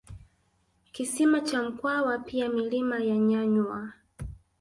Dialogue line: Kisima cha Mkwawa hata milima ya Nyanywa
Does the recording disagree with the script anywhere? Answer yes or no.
yes